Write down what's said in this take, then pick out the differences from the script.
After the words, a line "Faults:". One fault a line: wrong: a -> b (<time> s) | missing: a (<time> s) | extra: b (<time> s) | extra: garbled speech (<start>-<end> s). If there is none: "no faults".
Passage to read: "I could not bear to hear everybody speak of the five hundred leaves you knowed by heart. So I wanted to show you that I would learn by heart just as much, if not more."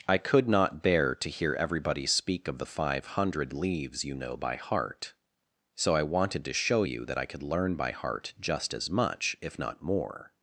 "I could not bear to hear everybody speak of the five hundred leaves you know by heart. So I wanted to show you that I could learn by heart just as much, if not more."
Faults:
wrong: knowed -> know (4.2 s)
wrong: would -> could (7.2 s)